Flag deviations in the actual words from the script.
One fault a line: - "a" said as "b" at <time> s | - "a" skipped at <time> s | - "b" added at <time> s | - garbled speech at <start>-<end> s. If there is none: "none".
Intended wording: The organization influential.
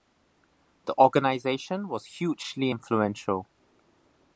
- "was hugely" added at 1.9 s